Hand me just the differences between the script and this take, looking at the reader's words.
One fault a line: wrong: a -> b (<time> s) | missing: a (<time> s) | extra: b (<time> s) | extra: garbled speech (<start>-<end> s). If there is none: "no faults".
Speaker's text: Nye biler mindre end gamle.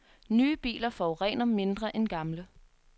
extra: forurener (0.9 s)